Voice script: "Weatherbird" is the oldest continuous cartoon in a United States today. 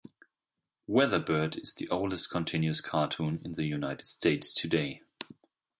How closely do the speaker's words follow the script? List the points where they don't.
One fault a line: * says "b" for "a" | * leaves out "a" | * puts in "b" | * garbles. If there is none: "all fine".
* says "the" for "a"